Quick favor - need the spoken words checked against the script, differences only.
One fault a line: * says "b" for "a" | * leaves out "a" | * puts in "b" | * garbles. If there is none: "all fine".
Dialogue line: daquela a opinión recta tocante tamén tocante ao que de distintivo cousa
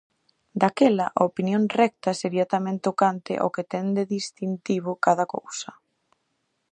* says "sería" for "tocante"
* puts in "ten"
* puts in "cada"